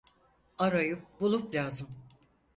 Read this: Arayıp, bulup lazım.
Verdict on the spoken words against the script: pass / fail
pass